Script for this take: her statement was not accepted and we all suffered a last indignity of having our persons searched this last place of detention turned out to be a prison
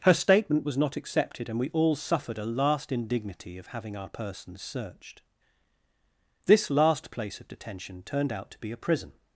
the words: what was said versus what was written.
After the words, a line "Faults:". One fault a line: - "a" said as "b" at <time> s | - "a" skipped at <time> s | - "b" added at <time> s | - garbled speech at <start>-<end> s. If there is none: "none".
her statement was not accepted and we all suffered a last indignity of having our persons searched this last place of detention turned out to be a prison
Faults:
none